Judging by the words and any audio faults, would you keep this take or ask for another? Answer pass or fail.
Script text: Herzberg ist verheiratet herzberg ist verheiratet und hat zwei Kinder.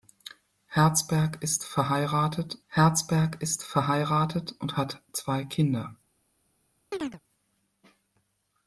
fail